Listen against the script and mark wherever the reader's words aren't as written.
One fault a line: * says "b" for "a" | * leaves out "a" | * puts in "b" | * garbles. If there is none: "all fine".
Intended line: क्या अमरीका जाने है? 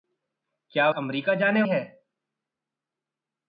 all fine